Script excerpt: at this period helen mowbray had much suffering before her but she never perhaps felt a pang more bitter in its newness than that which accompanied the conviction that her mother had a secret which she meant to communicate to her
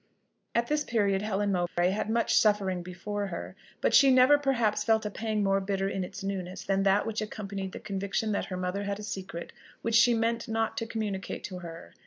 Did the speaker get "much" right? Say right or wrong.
right